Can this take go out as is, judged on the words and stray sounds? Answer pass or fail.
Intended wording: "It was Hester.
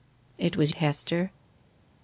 pass